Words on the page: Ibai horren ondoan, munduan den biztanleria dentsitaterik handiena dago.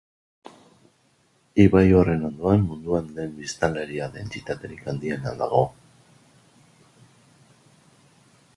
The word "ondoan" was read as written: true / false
true